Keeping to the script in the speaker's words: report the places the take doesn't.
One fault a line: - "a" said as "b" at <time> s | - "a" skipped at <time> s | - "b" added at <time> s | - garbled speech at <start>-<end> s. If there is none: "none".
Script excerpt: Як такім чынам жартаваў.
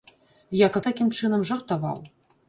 none